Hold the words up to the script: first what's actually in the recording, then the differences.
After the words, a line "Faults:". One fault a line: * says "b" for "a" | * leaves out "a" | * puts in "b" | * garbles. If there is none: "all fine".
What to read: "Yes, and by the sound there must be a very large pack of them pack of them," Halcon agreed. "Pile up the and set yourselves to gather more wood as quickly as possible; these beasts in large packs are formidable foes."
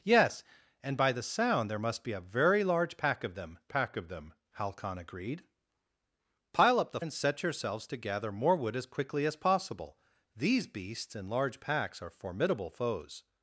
"Yes, and by the sound there must be a very large pack of them pack of them," Halcon agreed. "Pile up the and set yourselves to gather more wood as quickly as possible; these beasts in large packs are formidable foes."
Faults:
all fine